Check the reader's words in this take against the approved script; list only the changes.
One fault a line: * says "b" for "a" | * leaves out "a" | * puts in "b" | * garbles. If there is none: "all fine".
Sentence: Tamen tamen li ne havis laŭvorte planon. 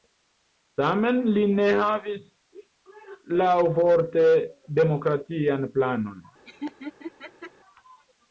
* leaves out "tamen"
* puts in "demokratian"